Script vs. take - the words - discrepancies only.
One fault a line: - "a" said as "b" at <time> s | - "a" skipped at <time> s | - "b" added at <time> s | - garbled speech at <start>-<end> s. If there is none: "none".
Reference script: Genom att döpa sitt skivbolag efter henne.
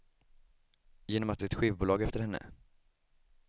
- "döpa" skipped at 1.4 s